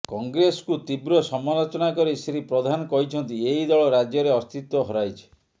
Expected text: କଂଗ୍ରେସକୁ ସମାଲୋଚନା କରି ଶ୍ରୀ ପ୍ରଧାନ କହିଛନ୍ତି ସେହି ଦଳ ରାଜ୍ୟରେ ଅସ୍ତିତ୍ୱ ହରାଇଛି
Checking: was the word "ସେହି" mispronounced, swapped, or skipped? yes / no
yes